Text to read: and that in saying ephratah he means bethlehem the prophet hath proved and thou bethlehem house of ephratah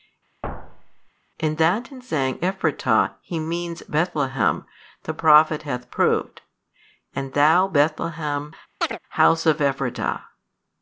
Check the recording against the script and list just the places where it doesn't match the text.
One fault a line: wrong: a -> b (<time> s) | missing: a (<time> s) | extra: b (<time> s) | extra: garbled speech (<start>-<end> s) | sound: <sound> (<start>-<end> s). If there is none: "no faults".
sound: thud (0.4-1.1 s)
sound: chirp (8.8-9.0 s)